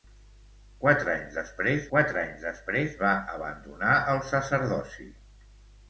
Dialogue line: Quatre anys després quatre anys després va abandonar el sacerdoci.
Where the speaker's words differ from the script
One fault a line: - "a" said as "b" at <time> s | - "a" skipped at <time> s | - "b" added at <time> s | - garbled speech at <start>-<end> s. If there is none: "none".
none